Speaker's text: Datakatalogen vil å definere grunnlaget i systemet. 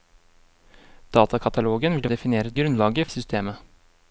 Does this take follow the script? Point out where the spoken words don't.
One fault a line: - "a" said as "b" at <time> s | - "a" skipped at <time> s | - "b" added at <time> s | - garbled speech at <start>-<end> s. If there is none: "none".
none